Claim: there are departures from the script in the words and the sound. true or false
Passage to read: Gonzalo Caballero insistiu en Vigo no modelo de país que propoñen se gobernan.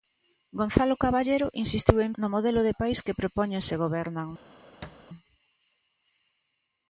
true